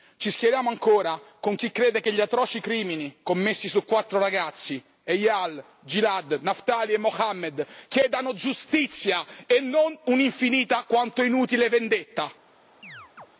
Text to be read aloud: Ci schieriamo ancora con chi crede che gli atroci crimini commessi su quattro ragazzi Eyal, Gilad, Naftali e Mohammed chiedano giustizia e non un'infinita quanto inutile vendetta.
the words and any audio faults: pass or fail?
fail